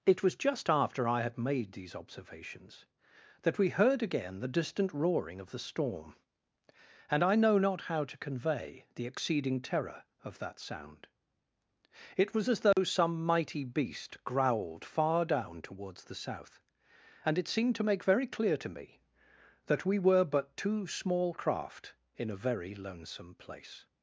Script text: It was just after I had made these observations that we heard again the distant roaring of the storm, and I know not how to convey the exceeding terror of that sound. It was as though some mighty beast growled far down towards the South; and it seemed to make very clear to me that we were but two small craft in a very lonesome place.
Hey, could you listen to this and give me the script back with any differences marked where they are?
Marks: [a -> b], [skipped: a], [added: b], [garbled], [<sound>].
It was just after I had made these observations that we heard again the distant roaring of the storm, and I know not how to convey the exceeding terror of that sound. It was as though [dropout] some mighty beast growled far down towards the South; and it seemed to make very clear to me that we were but two small craft in a very lonesome place.